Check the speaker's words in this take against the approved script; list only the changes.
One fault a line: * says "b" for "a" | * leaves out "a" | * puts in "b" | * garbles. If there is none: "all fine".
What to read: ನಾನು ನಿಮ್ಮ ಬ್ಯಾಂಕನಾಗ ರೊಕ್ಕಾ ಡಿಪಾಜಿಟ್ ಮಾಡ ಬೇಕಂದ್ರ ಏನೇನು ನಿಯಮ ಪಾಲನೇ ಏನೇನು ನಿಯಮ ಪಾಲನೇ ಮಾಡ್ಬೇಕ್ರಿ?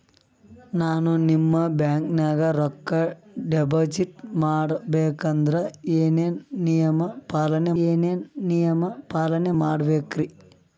all fine